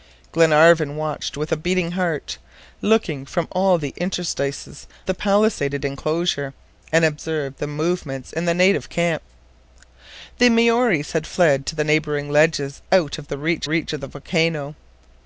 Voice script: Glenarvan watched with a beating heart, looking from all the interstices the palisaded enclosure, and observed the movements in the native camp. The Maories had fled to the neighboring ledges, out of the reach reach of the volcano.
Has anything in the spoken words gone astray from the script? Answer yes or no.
no